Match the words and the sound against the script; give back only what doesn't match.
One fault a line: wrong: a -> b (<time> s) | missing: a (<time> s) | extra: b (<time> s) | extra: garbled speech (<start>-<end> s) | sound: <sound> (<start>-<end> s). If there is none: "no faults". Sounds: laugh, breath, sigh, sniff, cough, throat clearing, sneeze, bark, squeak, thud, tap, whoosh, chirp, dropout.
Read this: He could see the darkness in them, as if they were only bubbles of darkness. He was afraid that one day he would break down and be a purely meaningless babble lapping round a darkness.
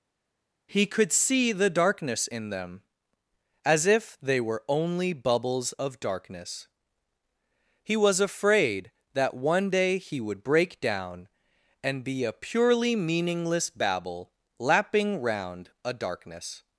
no faults